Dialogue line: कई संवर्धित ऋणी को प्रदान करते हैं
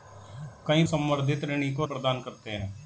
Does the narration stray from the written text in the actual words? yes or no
no